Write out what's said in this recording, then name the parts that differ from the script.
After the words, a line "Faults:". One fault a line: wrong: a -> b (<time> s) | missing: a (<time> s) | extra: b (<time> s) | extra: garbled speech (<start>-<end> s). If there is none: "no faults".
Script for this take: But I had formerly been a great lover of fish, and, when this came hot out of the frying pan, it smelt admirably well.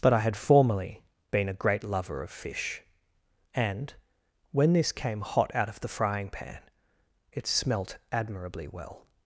But I had formerly been a great lover of fish, and, when this came hot out of the frying pan, it smelt admirably well.
Faults:
no faults